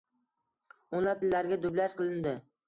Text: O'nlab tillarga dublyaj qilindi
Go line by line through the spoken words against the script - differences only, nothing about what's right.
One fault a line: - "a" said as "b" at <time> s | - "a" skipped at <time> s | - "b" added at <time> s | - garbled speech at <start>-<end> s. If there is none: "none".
none